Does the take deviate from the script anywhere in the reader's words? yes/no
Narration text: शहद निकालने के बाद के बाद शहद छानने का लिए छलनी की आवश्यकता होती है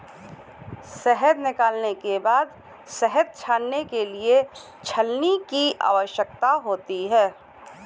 yes